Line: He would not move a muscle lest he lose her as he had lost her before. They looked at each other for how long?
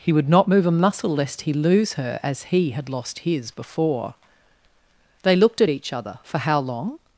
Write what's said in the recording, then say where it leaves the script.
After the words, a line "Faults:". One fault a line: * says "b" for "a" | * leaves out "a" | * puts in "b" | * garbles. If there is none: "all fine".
He would not move a muscle lest he lose her as he had lost his before. They looked at each other for how long?
Faults:
* says "his" for "her"